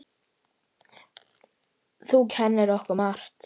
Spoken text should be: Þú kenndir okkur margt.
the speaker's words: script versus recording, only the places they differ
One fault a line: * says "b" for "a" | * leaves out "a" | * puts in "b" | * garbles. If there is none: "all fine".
all fine